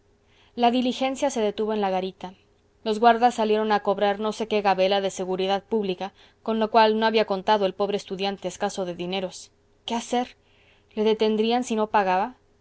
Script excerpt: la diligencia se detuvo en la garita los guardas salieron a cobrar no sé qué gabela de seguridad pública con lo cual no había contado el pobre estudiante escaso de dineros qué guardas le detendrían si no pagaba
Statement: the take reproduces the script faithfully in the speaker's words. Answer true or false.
false